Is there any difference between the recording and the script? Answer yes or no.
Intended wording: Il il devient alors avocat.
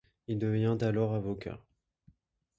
yes